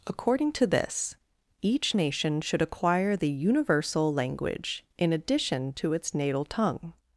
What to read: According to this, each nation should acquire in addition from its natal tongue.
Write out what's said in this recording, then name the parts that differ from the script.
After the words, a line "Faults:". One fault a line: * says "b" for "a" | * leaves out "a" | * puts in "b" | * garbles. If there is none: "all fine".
According to this, each nation should acquire the universal language in addition to its natal tongue.
Faults:
* puts in "the universal language"
* says "to" for "from"